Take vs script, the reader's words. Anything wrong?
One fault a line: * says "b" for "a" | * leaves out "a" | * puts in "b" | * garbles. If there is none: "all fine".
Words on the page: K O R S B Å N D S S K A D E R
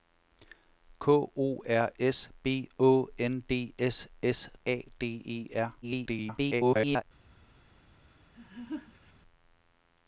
* leaves out "K"
* garbles